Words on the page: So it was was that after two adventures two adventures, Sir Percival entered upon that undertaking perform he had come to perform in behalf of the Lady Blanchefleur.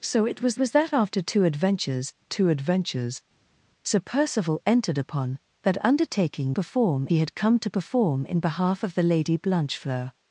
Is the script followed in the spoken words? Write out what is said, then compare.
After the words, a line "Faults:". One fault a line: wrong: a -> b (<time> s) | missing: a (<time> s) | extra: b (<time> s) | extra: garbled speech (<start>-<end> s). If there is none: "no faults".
So it was was that after two adventures two adventures, Sir Percival entered upon that undertaking perform he had come to perform in behalf of the Lady Blanchefleur.
Faults:
no faults